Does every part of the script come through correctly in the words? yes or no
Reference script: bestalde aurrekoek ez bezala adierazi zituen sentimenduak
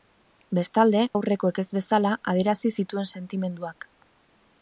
yes